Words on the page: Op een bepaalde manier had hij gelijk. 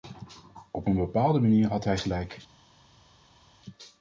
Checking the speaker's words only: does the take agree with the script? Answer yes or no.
yes